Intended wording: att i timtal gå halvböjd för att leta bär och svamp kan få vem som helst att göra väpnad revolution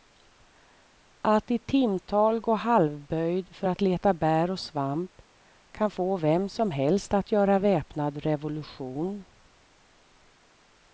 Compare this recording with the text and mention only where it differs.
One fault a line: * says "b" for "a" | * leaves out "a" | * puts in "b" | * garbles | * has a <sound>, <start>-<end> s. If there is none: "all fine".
all fine